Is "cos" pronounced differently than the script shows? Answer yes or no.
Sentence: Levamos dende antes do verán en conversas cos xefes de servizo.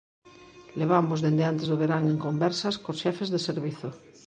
no